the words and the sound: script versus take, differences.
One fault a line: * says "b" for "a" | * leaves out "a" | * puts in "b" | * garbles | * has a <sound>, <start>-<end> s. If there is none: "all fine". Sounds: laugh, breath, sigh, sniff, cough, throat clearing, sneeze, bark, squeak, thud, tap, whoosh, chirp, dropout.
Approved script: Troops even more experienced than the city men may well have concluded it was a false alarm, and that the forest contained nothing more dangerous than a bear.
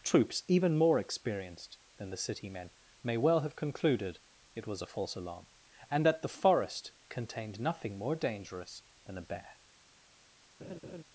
* has a laugh, 10.6-11.0 s